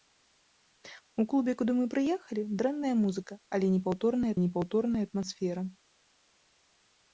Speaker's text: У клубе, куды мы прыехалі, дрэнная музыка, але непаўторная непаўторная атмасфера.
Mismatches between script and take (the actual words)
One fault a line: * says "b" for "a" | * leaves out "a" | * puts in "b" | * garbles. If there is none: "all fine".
all fine